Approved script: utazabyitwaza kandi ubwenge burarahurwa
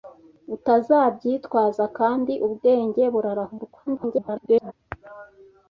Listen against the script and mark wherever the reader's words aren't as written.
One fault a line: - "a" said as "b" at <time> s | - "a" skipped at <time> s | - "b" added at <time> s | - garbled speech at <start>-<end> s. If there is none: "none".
- garbled speech at 3.9-4.7 s